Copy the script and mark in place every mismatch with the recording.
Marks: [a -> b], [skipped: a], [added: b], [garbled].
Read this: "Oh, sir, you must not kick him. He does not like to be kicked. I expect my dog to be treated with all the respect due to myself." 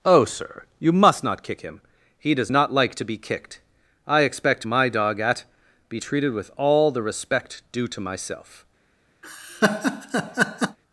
"Oh, sir, you must not kick him. He does not like to be kicked. I expect my dog [to -> at] be treated with all the respect due to myself."